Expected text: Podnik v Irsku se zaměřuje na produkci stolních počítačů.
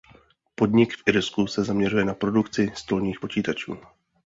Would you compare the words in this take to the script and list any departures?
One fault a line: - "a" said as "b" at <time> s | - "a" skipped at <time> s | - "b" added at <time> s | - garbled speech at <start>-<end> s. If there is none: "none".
none